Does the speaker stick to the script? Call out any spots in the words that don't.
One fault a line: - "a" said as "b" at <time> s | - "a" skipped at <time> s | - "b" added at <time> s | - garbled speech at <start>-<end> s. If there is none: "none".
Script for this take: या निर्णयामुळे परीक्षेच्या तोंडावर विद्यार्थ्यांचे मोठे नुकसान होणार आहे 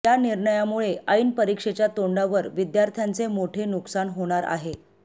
- "ऐन" added at 1.1 s